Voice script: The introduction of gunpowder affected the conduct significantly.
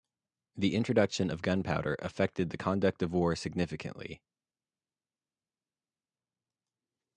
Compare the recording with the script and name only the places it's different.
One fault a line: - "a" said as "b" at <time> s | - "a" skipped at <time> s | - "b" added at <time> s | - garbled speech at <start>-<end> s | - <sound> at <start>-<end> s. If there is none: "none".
- "of war" added at 3.0 s